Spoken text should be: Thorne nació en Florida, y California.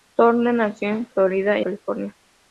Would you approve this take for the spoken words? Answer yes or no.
yes